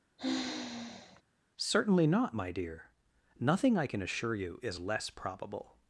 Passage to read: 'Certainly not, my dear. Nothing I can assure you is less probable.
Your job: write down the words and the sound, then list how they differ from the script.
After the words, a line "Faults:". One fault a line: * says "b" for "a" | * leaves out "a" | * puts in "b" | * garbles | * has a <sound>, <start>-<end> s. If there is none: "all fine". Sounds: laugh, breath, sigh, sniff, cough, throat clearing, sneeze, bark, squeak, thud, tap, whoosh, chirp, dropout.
'Certainly not, my dear. Nothing I can assure you is less probable.
Faults:
* has a sigh, 0.2-1.2 s